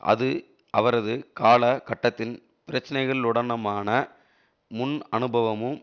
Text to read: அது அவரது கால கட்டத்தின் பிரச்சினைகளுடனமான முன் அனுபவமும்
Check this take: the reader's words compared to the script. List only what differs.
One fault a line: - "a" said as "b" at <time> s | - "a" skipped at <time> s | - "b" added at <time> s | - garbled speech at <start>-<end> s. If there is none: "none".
none